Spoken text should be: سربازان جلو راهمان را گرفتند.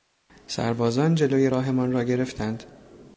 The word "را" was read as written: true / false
true